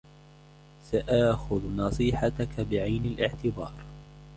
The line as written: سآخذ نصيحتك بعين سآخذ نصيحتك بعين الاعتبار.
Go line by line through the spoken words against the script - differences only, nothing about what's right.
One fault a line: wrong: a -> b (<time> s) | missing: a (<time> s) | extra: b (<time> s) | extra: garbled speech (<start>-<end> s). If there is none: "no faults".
missing: سآخذ نصيحتك بعين (3.1 s)